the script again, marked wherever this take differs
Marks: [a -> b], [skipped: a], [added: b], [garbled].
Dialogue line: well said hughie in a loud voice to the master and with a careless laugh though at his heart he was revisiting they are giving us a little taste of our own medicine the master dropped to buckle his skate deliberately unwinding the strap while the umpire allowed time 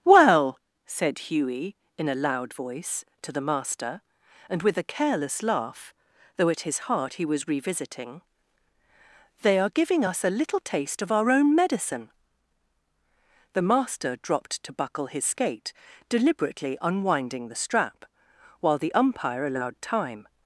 well said hughie in a loud voice to the master and with a careless laugh though at his heart he was revisiting they are giving us a little taste of our own medicine the master dropped to buckle his skate deliberately unwinding the strap while the umpire allowed time